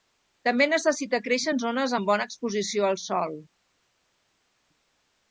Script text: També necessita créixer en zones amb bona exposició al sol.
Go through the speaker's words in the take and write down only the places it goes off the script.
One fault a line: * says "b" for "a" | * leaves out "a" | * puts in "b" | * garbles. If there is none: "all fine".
all fine